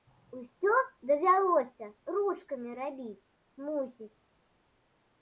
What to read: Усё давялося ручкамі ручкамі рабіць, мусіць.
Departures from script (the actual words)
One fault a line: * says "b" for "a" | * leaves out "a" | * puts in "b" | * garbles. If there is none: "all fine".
* leaves out "ручкамі"